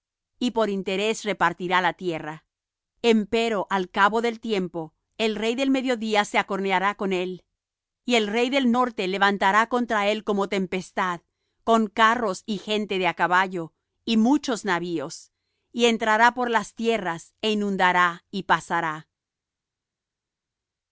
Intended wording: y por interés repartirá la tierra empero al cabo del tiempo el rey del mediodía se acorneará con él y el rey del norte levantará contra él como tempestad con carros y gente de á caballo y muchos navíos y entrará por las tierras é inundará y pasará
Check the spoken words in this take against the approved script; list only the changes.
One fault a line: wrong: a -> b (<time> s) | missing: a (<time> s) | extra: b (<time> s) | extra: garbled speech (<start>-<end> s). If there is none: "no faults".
no faults